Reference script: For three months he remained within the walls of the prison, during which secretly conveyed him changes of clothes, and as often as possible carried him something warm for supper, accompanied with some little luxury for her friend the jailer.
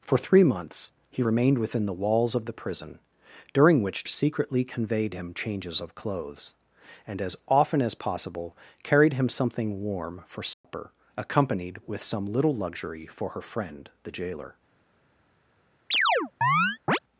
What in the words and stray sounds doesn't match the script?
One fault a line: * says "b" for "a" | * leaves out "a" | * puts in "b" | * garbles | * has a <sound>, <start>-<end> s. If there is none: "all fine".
* has a dropout, 10.5-10.6 s
* has a chirp, 15.9-17.0 s